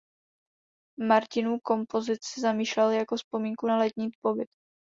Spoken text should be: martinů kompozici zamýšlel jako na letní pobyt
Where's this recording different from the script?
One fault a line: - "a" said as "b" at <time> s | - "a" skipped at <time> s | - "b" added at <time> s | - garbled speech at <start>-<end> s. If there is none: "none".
- "vzpomínku" added at 3.1 s